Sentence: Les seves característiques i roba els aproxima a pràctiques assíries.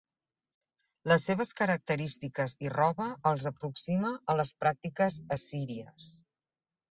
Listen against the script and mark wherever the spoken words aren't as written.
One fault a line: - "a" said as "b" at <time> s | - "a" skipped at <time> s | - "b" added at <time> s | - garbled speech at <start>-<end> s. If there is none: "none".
- "les" added at 4.4 s